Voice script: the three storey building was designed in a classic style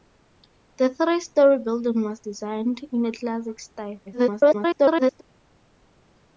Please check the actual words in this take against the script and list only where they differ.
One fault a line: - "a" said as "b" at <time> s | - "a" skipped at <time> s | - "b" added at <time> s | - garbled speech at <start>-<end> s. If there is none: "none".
- garbled speech at 4.1-5.2 s